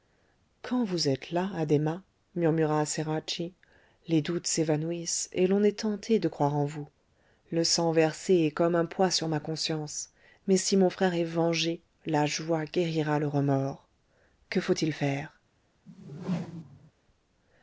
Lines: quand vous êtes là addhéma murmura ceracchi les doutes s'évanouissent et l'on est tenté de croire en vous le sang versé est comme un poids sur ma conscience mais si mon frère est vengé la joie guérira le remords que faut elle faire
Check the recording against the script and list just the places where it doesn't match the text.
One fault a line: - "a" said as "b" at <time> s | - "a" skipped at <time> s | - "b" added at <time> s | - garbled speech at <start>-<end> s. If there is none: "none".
- "elle" said as "il" at 14.7 s